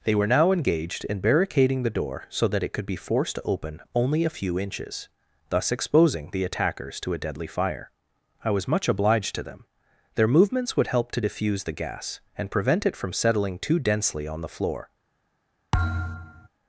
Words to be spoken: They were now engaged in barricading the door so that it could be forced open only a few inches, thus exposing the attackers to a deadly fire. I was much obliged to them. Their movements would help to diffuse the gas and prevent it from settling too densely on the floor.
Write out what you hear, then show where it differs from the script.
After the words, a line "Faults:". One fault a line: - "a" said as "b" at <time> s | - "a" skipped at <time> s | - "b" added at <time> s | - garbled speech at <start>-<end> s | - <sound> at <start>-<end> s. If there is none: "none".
They were now engaged in barricading the door so that it could be forced to open only a few inches, thus exposing the attackers to a deadly fire. I was much obliged to them. Their movements would help to diffuse the gas and prevent it from settling too densely on the floor.
Faults:
- "to" added at 3.4 s
- thud at 15.7-16.5 s